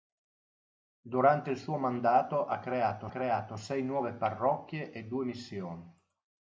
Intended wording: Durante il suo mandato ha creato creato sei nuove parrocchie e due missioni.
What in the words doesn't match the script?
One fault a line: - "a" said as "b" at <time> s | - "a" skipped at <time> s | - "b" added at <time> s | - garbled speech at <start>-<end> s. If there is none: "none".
none